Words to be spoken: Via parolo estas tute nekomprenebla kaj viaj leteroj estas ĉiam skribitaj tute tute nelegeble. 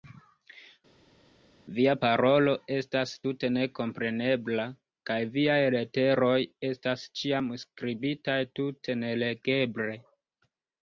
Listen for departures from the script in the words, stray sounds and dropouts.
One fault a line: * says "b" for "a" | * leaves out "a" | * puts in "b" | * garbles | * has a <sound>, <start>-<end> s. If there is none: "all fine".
* leaves out "tute"